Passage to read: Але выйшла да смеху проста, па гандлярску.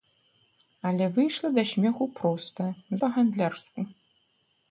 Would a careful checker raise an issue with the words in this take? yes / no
no